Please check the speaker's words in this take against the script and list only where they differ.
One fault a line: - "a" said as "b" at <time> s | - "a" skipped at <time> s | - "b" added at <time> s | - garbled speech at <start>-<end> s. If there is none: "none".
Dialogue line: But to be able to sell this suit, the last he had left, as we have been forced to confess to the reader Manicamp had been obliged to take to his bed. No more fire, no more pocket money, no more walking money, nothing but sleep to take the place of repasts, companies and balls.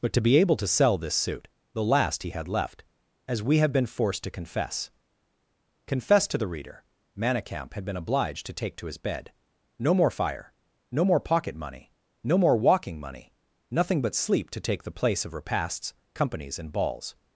- "confess" added at 5.9 s